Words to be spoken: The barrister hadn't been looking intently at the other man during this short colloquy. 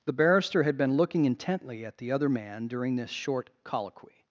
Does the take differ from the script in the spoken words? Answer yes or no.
yes